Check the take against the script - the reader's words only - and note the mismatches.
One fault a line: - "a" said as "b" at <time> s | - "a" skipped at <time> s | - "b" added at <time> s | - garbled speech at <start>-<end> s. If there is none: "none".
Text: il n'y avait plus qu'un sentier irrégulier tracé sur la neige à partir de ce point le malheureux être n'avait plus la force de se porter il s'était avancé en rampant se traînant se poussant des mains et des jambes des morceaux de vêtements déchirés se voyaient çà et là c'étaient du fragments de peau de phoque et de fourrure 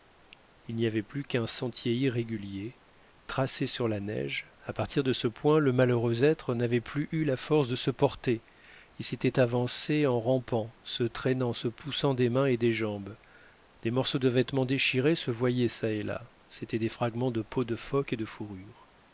- "eu" added at 7.1 s
- "du" said as "des" at 16.8 s